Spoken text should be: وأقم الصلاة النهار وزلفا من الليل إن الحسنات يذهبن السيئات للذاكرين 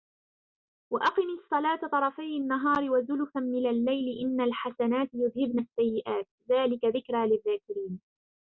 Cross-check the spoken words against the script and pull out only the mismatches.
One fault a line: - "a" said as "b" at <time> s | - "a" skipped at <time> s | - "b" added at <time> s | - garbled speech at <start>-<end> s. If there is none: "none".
- "طرفي" added at 1.9 s
- "ذلك ذكرى" added at 6.5 s